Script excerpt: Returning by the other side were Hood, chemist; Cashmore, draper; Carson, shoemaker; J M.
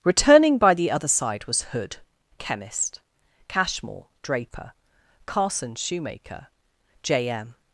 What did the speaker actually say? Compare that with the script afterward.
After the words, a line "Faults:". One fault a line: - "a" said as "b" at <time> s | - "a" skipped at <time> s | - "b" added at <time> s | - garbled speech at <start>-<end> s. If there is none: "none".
Returning by the other side was Hood, chemist; Cashmore, draper; Carson, shoemaker; J M.
Faults:
- "were" said as "was" at 1.4 s